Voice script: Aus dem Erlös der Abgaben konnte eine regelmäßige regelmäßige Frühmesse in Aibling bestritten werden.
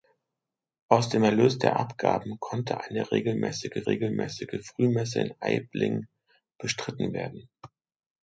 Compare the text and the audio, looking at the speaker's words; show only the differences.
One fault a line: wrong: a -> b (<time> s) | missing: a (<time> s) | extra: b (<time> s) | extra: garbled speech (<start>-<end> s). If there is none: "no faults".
no faults